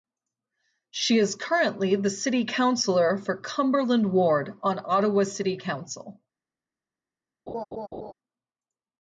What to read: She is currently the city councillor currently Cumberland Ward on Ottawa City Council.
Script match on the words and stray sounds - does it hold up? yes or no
no